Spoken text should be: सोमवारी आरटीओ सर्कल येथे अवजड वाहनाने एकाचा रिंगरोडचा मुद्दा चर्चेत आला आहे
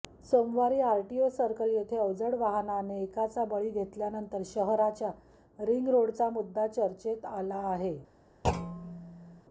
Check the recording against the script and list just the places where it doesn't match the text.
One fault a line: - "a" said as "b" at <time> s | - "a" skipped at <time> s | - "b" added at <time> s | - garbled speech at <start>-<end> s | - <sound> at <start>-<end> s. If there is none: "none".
- "बळी घेतल्यानंतर शहराच्या" added at 3.5 s
- thud at 8.4-9.4 s